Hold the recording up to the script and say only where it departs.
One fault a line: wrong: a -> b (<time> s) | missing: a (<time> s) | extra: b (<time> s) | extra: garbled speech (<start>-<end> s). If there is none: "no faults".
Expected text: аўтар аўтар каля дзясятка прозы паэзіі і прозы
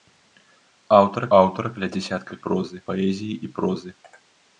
no faults